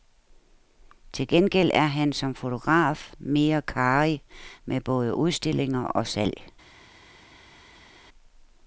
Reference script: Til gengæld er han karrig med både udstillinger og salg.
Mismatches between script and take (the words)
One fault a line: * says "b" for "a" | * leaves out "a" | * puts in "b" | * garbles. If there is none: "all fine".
* puts in "som fotograf mere"